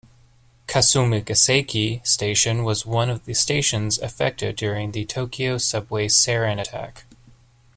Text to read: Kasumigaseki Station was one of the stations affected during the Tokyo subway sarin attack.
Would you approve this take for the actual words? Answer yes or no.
yes